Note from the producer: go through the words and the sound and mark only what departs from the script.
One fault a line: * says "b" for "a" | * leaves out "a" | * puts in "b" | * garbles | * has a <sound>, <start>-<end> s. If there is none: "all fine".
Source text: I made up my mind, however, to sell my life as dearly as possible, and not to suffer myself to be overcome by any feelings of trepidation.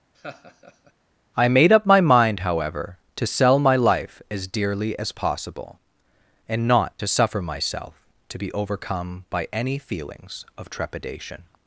* has a laugh, 0.1-0.9 s